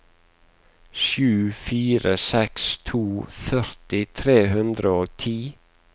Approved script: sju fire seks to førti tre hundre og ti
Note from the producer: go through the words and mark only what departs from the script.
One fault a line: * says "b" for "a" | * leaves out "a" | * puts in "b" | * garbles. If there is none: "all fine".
all fine